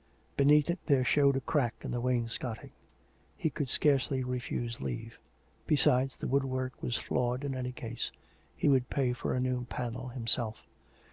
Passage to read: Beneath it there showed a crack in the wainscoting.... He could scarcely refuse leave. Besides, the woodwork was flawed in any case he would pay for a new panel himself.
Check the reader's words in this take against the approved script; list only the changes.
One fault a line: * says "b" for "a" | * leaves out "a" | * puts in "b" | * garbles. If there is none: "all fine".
all fine